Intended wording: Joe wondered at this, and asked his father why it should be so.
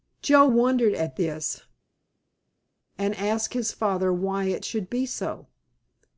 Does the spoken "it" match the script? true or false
true